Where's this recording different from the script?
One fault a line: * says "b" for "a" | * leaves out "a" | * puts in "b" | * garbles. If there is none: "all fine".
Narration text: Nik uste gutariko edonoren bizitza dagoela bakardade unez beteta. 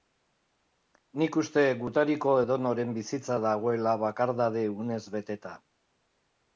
all fine